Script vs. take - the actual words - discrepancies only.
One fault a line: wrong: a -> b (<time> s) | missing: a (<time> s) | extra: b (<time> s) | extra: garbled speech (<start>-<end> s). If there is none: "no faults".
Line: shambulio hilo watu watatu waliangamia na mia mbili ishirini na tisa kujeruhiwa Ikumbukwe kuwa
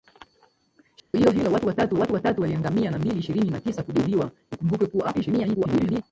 extra: watu watatu (2.0 s)
missing: mia (3.0 s)
extra: garbled speech (5.1-6.0 s)